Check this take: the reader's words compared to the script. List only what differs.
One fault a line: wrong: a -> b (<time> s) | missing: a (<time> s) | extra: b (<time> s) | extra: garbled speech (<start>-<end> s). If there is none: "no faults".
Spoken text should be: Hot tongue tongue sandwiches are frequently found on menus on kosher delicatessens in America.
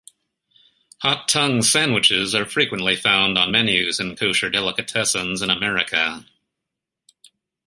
missing: tongue (1.6 s)
wrong: on -> in (4.0 s)